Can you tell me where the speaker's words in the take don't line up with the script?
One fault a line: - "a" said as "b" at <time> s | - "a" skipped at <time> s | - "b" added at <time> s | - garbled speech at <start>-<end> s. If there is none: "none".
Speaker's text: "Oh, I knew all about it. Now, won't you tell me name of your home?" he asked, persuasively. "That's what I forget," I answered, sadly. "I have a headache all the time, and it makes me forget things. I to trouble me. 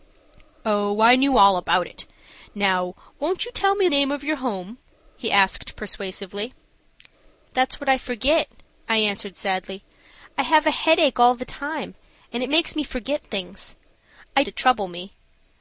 none